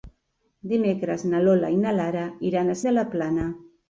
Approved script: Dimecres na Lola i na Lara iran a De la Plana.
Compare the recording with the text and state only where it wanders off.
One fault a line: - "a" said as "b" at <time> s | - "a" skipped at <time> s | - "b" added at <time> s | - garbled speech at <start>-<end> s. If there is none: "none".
none